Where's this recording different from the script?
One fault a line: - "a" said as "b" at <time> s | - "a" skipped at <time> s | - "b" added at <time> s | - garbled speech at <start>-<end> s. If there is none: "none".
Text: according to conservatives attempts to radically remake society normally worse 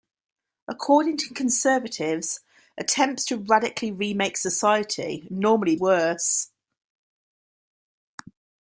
none